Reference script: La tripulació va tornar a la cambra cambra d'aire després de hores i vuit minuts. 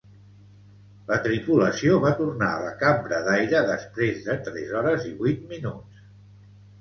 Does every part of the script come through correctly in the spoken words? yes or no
no